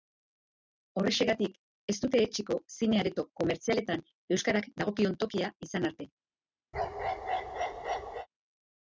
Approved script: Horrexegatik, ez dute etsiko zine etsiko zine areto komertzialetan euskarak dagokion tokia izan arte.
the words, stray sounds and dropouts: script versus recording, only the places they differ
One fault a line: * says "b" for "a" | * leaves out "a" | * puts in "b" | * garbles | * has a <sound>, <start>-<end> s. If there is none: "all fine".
* leaves out "etsiko zine"
* has a bark, 6.7-8.3 s